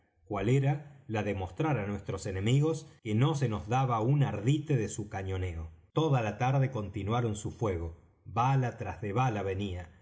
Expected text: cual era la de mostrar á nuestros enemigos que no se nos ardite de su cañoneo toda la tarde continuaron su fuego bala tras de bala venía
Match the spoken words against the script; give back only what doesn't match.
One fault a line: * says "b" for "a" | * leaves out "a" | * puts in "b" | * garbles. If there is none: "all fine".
* puts in "daba un"